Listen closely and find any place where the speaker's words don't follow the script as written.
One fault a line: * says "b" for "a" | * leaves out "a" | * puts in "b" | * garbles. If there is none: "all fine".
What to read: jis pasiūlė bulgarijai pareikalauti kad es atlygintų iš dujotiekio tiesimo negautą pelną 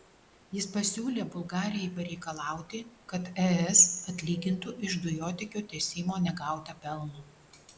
all fine